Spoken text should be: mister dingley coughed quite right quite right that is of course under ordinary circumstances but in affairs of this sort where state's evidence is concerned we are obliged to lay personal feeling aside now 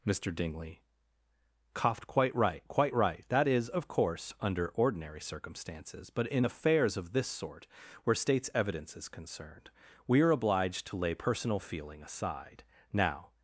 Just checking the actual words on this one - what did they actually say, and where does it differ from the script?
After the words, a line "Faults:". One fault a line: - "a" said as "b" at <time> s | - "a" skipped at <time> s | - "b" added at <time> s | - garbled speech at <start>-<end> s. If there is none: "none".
mister dingley coughed quite right quite right that is of course under ordinary circumstances but in affairs of this sort where state's evidence is concerned we are obliged to lay personal feeling aside now
Faults:
none